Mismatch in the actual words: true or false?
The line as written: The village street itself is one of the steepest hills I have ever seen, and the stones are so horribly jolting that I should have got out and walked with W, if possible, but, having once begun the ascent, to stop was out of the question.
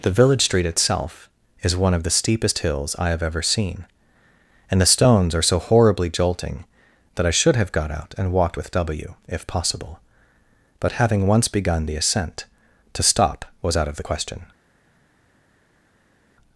false